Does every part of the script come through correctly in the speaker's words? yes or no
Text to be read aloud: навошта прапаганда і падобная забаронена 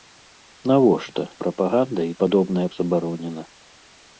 yes